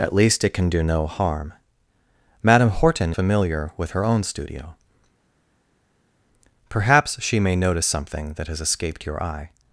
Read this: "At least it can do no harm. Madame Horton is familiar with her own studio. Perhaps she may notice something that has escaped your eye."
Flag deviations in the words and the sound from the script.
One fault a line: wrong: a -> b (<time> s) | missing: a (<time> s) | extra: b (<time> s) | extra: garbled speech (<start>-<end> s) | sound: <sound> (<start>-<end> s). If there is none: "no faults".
missing: is (3.1 s)